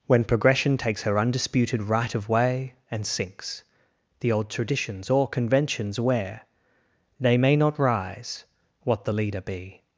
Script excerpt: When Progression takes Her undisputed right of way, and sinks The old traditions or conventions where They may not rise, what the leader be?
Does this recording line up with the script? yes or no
yes